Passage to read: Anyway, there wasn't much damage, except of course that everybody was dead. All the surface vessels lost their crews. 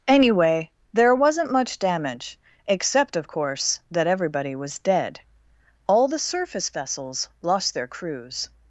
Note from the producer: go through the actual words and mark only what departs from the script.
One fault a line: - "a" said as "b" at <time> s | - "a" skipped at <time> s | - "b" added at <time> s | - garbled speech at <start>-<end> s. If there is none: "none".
none